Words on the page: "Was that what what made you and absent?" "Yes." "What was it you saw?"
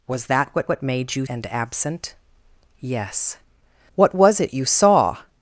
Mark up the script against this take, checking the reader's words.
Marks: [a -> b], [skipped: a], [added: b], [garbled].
"Was that what what made you and absent?" "Yes." "What was it you saw?"